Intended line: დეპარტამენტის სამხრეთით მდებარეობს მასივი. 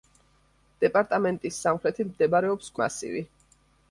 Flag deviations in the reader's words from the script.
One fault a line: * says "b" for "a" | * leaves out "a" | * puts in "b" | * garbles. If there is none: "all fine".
all fine